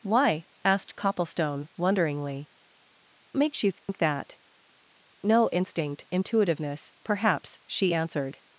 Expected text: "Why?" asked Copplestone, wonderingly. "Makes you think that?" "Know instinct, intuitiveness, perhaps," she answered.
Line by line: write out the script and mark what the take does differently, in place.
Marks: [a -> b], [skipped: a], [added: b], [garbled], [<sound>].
"Why?" asked Copplestone, wonderingly. "Makes you think [dropout] that?" "Know instinct, intuitiveness, perhaps," she answered.